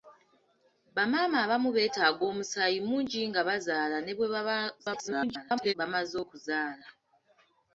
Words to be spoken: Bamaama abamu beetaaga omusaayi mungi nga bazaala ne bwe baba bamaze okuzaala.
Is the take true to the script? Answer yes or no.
no